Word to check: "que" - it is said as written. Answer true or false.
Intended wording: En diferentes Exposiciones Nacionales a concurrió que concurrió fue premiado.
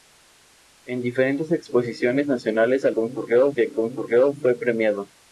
true